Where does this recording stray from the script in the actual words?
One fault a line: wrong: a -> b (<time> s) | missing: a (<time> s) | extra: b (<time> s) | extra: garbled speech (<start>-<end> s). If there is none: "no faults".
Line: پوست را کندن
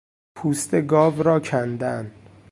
extra: گاو (0.8 s)